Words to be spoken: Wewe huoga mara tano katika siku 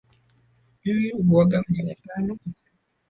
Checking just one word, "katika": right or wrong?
wrong